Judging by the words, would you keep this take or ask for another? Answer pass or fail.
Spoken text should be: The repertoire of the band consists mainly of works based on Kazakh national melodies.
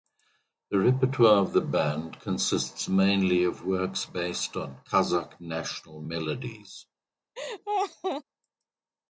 pass